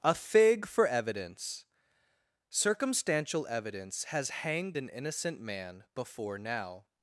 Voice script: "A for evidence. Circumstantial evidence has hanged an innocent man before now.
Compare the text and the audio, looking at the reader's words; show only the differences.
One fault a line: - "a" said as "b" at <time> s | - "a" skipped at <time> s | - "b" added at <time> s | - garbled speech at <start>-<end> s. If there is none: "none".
- "fig" added at 0.1 s